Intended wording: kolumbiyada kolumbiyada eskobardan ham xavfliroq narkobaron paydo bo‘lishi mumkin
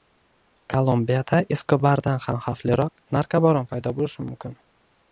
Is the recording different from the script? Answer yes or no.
yes